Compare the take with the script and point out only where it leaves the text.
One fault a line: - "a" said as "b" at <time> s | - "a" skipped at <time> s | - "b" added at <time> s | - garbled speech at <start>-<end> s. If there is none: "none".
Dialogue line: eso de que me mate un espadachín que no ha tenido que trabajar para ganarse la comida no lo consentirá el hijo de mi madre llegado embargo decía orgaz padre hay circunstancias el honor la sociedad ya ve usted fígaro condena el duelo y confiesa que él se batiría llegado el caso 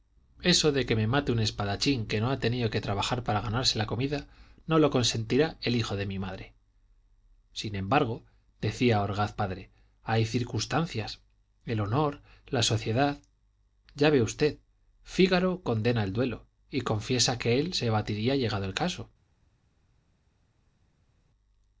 - "llegado" said as "sin" at 7.5 s